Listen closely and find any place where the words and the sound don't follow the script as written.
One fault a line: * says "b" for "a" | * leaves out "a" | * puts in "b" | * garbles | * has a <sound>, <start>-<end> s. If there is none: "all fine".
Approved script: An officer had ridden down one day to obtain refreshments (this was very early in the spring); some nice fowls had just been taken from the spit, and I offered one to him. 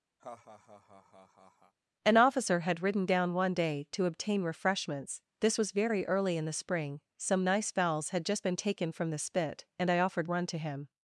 * has a laugh, 0.2-1.7 s